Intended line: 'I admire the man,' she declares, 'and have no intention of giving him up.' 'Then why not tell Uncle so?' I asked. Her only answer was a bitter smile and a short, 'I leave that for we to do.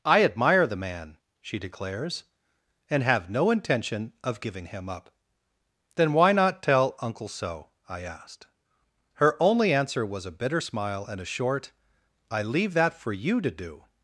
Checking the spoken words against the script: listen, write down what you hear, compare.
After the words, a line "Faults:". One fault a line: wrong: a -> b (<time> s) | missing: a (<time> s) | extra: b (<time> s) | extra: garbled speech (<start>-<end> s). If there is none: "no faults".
'I admire the man,' she declares, 'and have no intention of giving him up.' 'Then why not tell Uncle so?' I asked. Her only answer was a bitter smile and a short, 'I leave that for you to do.
Faults:
wrong: we -> you (13.1 s)